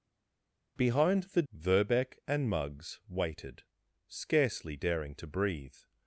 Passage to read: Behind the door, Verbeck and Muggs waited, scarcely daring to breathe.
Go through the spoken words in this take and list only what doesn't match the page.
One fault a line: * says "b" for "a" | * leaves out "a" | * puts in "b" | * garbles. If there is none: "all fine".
* leaves out "door"